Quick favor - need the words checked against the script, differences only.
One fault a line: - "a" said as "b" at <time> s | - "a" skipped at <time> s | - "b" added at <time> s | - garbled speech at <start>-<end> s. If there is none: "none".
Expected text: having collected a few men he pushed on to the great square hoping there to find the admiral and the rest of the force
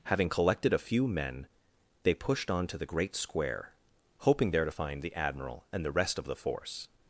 - "he" said as "they" at 2.0 s